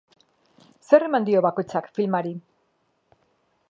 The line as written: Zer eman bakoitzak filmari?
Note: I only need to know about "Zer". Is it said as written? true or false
true